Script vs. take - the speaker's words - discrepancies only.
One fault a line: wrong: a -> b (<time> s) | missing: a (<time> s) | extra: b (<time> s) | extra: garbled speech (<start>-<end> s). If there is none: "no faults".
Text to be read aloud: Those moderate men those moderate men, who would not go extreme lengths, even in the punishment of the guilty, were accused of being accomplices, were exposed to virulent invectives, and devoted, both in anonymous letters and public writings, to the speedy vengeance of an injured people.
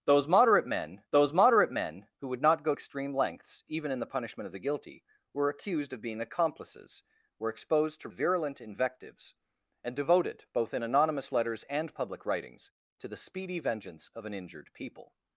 no faults